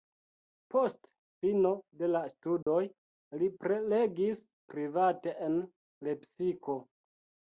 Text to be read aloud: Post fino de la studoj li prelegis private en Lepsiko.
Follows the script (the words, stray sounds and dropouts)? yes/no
no